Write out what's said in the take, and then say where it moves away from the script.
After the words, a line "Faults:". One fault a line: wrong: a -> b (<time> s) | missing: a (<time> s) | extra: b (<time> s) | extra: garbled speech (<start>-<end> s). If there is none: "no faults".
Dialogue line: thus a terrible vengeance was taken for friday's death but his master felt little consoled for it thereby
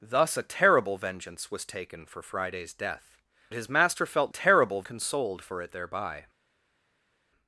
thus a terrible vengeance was taken for friday's death his master felt terrible consoled for it thereby
Faults:
missing: but (3.2 s)
wrong: little -> terrible (4.3 s)